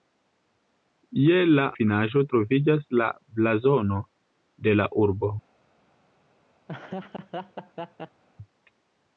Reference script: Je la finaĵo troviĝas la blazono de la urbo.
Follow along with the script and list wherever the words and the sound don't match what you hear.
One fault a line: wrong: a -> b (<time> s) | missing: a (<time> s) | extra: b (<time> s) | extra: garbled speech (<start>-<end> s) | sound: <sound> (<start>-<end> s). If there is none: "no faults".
sound: laugh (6.7-8.2 s)